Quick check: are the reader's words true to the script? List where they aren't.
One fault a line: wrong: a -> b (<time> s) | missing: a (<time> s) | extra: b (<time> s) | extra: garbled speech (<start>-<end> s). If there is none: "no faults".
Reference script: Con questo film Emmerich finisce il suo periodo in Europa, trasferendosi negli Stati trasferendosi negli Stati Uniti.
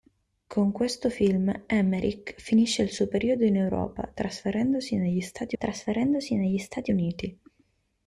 no faults